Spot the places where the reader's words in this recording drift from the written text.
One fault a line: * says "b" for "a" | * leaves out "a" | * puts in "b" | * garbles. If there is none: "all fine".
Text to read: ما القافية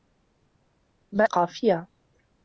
all fine